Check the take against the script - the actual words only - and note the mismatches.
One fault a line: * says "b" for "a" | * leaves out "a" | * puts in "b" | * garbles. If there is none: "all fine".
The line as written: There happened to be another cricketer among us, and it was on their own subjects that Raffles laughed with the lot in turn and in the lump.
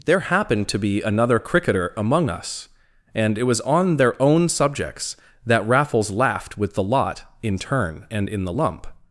all fine